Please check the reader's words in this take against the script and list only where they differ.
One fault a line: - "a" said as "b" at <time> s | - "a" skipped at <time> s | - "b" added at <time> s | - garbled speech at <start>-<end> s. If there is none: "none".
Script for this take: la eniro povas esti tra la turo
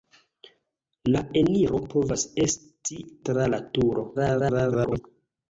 - garbled speech at 4.1-5.0 s